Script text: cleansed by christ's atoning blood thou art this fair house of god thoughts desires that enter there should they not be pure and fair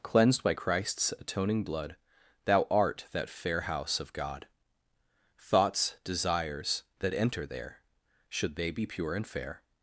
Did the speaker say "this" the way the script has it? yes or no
no